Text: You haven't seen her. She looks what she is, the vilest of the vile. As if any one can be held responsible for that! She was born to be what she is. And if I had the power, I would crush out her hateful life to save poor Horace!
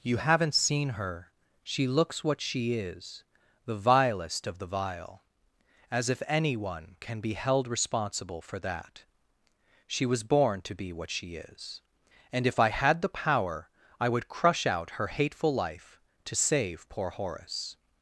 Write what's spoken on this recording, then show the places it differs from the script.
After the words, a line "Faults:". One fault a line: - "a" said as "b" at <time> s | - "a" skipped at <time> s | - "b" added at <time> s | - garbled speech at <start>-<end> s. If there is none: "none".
You haven't seen her. She looks what she is, the vilest of the vile. As if any one can be held responsible for that! She was born to be what she is. And if I had the power, I would crush out her hateful life to save poor Horace!
Faults:
none